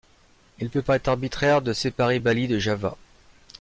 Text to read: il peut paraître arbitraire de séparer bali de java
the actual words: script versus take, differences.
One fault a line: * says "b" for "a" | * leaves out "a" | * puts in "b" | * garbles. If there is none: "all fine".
all fine